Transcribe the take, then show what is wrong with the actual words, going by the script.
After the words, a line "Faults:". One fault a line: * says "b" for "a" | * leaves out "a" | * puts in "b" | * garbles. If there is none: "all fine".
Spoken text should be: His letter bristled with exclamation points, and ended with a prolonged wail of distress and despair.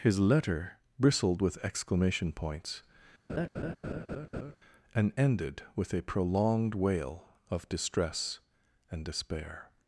His letter bristled with exclamation points, and ended with a prolonged wail of distress and despair.
Faults:
all fine